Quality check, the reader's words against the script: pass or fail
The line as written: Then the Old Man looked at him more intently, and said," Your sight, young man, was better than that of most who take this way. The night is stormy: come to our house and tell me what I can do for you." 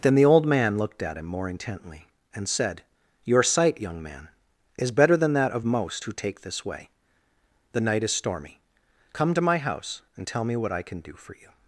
fail